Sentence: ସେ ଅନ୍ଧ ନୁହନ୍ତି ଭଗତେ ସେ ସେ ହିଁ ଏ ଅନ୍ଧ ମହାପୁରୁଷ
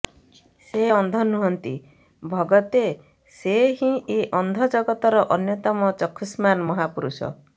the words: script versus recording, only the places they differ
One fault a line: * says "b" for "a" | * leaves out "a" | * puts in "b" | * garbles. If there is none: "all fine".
* leaves out "ସେ"
* puts in "ଜଗତର ଅନ୍ୟତମ ଚକ୍ଷୁଷ୍ମାନ୍"